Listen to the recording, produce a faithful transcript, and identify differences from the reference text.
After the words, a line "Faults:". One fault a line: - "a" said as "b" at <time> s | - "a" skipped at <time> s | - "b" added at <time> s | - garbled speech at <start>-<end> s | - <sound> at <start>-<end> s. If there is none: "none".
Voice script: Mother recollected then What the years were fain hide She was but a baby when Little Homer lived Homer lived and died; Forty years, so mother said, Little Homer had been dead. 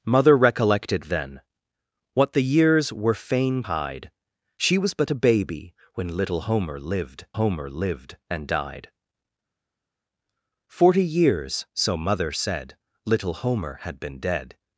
Mother recollected then What the years were fain hide She was but a baby when Little Homer lived Homer lived and died; Forty years, so mother said, Little Homer had been dead.
Faults:
none